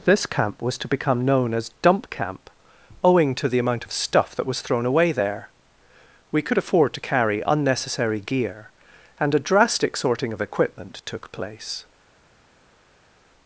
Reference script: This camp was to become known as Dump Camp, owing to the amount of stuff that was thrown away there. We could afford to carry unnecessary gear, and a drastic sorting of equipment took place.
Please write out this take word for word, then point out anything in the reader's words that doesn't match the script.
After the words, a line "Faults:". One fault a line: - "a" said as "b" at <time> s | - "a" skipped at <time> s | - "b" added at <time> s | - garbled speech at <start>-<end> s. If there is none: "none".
This camp was to become known as Dump Camp, owing to the amount of stuff that was thrown away there. We could afford to carry unnecessary gear, and a drastic sorting of equipment took place.
Faults:
none